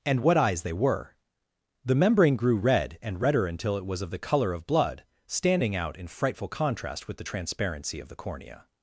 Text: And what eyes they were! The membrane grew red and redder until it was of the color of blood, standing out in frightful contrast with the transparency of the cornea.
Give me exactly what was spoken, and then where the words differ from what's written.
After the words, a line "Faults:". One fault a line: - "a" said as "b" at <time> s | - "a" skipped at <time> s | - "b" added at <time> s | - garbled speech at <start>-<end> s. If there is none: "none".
And what eyes they were! The membrane grew red and redder until it was of the color of blood, standing out in frightful contrast with the transparency of the cornea.
Faults:
none